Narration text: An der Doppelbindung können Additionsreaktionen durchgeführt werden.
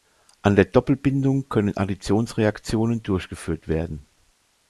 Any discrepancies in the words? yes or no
no